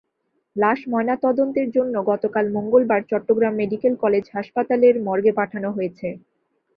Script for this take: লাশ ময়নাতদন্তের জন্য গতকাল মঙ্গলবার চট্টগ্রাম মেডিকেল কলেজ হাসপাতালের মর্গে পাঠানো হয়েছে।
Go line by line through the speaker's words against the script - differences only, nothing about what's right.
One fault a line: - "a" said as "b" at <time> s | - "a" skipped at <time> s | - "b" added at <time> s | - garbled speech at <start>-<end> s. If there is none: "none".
none